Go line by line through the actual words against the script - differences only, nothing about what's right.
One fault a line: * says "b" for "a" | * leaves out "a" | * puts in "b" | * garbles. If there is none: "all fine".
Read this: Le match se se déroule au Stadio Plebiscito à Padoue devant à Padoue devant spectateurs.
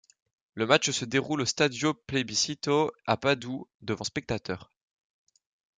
* leaves out "se"
* leaves out "à Padoue devant"